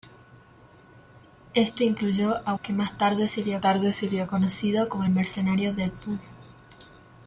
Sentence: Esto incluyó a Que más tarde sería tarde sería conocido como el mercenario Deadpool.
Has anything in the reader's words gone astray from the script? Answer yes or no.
no